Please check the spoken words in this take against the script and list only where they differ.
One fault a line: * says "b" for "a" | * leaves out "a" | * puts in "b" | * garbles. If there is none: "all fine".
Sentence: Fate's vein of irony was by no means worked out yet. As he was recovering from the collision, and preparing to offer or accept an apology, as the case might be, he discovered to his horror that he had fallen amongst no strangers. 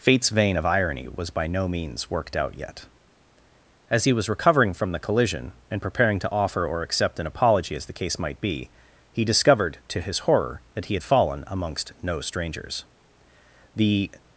* puts in "The"